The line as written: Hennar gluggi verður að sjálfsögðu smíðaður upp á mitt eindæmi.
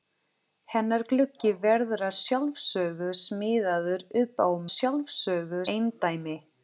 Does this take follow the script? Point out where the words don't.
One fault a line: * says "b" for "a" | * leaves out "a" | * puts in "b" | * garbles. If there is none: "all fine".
* says "sjálfsögðu" for "mitt"